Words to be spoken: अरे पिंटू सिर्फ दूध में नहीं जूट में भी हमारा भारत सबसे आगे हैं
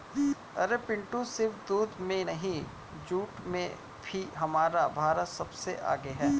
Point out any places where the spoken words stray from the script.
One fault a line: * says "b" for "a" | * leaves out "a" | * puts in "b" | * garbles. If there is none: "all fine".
all fine